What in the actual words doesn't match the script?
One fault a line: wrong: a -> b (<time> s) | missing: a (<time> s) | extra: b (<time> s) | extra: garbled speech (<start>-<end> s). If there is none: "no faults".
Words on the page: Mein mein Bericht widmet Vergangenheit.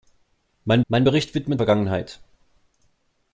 no faults